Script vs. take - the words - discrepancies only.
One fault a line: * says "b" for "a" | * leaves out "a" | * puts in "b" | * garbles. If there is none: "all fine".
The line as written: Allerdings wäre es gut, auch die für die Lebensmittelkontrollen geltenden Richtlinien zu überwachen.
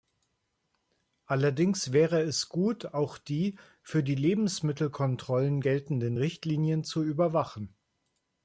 all fine